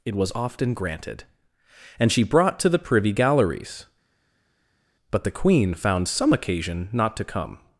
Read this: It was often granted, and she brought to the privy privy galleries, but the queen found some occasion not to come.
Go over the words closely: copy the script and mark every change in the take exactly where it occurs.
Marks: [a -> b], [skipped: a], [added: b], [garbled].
It was often granted, and she brought to the privy [skipped: privy] galleries, but the queen found some occasion not to come.